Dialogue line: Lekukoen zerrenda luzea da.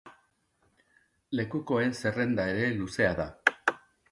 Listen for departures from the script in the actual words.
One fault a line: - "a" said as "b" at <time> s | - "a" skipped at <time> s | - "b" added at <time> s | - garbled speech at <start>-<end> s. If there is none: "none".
- "ere" added at 2.5 s